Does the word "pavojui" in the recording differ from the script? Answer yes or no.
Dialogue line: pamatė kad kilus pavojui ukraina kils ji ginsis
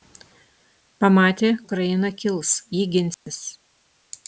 yes